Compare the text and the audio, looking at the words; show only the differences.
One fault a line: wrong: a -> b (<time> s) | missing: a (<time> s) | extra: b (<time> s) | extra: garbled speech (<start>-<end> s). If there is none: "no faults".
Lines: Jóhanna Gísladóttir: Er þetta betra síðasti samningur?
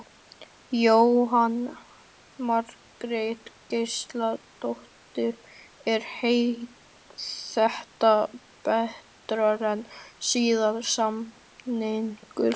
extra: Margrét (2.4 s)
extra: en (9.7 s)